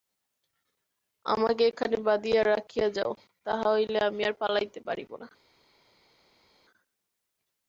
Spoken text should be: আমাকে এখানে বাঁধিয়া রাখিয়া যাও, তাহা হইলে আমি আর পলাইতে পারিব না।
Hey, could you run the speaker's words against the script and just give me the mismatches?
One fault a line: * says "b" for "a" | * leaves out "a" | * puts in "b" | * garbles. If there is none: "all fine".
all fine